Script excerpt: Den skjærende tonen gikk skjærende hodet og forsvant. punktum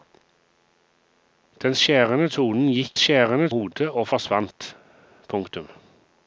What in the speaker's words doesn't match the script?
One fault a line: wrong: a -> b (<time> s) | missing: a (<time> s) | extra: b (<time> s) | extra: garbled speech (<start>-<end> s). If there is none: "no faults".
no faults